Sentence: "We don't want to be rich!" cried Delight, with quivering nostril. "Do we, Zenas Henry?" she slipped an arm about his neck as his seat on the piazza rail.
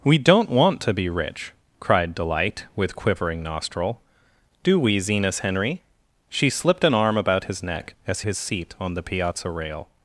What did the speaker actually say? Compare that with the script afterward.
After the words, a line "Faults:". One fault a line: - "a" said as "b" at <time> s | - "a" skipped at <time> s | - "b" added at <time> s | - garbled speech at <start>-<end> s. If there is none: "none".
"We don't want to be rich!" cried Delight, with quivering nostril. "Do we, Zenas Henry?" she slipped an arm about his neck as his seat on the piazza rail.
Faults:
none